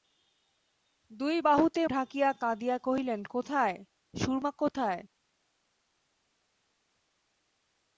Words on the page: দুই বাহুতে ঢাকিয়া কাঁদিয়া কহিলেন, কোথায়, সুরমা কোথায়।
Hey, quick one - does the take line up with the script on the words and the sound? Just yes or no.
yes